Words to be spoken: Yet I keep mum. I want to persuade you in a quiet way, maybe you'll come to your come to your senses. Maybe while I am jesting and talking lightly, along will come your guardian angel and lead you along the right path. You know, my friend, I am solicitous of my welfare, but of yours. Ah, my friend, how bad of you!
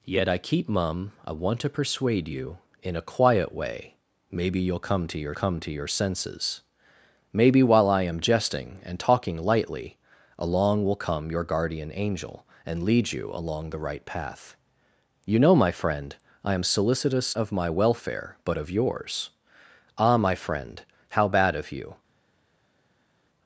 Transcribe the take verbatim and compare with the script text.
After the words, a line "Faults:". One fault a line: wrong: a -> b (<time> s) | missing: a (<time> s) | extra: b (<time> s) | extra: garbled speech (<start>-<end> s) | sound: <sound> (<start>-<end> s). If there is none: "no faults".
Yet I keep mum. I want to persuade you in a quiet way, maybe you'll come to your come to your senses. Maybe while I am jesting and talking lightly, along will come your guardian angel and lead you along the right path. You know, my friend, I am solicitous of my welfare, but of yours. Ah, my friend, how bad of you!
Faults:
no faults